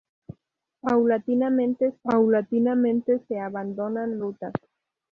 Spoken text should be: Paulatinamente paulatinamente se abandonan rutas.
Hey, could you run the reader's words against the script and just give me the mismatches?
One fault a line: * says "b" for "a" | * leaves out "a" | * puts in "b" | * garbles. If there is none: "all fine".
all fine